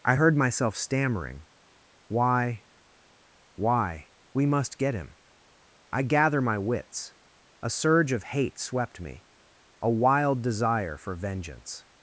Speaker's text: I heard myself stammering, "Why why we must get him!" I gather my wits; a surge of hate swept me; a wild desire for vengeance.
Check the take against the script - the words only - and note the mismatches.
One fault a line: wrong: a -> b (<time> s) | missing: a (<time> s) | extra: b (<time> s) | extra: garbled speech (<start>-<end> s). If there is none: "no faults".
no faults